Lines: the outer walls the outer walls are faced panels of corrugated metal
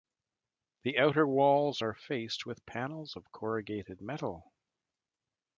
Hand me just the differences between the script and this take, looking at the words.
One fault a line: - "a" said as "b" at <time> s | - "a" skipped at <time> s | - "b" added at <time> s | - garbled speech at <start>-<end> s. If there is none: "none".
- "the outer walls" skipped at 1.8 s
- "with" added at 2.5 s